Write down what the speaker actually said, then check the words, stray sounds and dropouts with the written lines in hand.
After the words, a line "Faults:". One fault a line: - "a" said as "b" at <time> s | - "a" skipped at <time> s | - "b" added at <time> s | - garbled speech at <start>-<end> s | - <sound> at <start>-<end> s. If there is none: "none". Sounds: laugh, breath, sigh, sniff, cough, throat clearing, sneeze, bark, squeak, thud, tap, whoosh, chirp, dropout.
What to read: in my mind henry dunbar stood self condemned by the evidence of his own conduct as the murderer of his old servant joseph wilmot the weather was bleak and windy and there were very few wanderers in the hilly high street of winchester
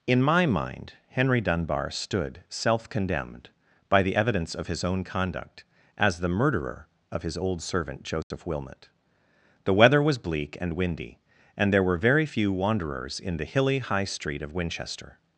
in my mind henry dunbar stood self condemned by the evidence of his own conduct as the murderer of his old servant joseph wilmot the weather was bleak and windy and there were very few wanderers in the hilly high street of winchester
Faults:
- dropout at 8.2-8.3 s